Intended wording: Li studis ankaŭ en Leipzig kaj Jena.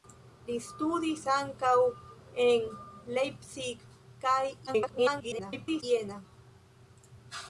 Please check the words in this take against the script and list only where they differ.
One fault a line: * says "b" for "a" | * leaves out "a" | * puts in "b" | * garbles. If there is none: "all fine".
* garbles